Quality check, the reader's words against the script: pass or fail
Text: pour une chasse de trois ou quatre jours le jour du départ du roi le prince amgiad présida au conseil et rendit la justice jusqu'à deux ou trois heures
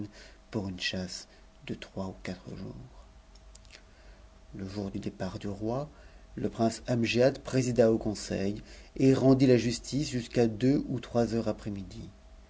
pass